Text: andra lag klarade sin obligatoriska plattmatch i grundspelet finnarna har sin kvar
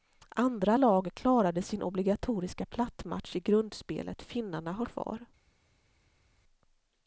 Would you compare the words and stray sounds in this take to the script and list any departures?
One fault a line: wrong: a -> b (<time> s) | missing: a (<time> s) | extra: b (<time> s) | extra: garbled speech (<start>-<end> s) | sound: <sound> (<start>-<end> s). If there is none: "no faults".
missing: sin (4.9 s)